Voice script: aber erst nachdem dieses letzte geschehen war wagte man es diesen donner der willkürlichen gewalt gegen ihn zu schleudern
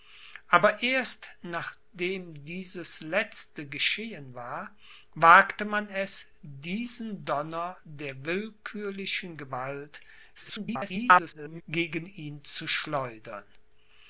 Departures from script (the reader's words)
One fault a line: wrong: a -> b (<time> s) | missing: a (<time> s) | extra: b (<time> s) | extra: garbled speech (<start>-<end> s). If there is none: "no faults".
extra: garbled speech (10.3-11.6 s)